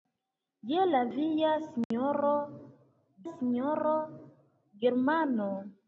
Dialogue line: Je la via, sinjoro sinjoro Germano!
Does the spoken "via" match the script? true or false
true